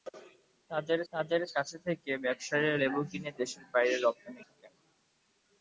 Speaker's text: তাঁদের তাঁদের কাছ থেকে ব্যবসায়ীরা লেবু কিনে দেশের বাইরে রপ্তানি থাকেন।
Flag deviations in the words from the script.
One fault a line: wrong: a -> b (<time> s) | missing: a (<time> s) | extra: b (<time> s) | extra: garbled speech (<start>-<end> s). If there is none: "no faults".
no faults